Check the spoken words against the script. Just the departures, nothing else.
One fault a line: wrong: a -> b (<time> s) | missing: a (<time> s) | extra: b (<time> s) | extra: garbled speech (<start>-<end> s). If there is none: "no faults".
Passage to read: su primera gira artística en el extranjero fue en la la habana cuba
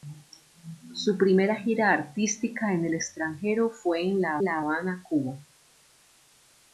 no faults